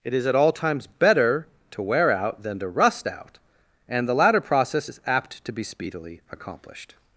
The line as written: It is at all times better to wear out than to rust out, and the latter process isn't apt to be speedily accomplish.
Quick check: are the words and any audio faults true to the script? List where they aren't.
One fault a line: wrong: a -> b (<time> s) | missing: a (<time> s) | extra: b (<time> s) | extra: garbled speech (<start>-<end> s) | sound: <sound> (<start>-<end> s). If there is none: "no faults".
wrong: isn't -> is (4.9 s)
wrong: accomplish -> accomplished (6.3 s)